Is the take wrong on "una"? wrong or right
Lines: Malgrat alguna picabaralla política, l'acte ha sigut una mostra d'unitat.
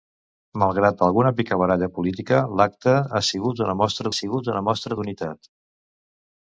right